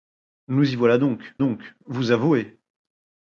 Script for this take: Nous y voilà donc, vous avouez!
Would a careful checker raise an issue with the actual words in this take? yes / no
yes